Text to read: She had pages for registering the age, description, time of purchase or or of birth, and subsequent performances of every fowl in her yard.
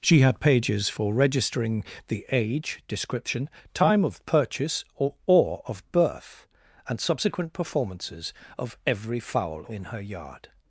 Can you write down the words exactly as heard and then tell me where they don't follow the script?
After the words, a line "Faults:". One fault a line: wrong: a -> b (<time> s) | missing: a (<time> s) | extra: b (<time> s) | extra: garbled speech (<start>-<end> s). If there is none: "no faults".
She had pages for registering the age, description, time of purchase or or of birth, and subsequent performances of every fowl in her yard.
Faults:
no faults